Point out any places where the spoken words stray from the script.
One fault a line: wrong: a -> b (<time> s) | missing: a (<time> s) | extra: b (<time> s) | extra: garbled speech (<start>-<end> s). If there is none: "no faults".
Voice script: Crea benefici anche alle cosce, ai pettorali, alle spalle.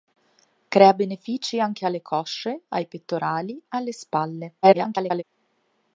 extra: garbled speech (4.6-5.2 s)